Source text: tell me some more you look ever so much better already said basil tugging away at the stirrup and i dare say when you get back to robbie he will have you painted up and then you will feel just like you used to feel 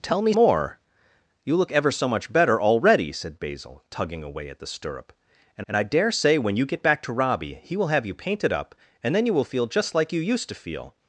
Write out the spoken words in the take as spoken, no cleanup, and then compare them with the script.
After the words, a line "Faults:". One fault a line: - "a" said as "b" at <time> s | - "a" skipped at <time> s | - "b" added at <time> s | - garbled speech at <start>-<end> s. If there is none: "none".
tell me more you look ever so much better already said basil tugging away at the stirrup and and i dare say when you get back to robbie he will have you painted up and then you will feel just like you used to feel
Faults:
- "some" skipped at 0.3 s
- "and" added at 5.7 s